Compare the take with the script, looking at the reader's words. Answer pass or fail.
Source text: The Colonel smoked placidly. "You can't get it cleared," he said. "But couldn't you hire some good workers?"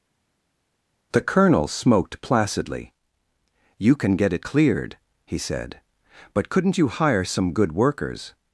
fail